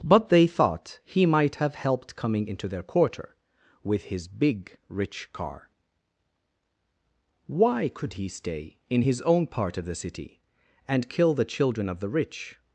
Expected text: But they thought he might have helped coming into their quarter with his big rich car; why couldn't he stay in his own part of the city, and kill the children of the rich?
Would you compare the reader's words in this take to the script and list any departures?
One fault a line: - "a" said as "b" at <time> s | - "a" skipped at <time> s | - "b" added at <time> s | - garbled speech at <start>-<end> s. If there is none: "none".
- "couldn't" said as "could" at 7.9 s